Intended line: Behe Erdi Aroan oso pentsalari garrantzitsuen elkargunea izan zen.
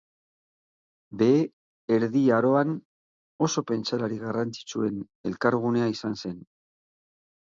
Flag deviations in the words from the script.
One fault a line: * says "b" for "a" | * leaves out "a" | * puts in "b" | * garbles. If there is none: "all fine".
all fine